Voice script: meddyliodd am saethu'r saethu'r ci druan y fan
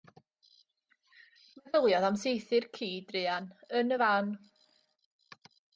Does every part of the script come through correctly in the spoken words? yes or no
no